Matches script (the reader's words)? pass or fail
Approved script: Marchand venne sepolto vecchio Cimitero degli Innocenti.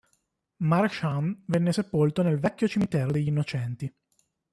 fail